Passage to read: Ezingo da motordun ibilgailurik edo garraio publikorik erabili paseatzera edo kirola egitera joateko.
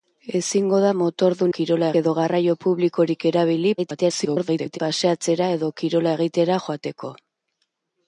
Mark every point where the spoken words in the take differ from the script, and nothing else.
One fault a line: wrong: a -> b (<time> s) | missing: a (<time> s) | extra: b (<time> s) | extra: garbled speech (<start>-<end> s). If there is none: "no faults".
wrong: ibilgailurik -> kirola (1.6 s)
extra: garbled speech (3.8-4.8 s)